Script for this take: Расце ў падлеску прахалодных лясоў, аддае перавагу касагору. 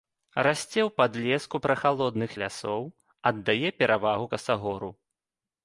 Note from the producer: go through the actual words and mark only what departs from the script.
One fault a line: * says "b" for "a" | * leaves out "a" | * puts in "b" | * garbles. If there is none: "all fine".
all fine